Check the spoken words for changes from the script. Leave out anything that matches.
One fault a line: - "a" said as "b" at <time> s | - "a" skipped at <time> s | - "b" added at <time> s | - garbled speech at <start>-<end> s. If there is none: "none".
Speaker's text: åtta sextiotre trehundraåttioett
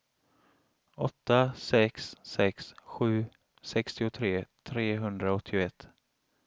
- "sex sex sju" added at 1.6 s